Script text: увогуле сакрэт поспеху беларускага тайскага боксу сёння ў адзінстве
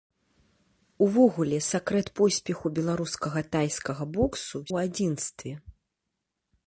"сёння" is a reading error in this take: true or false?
true